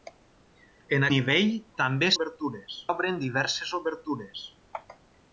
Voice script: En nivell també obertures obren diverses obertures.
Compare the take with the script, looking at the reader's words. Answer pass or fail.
pass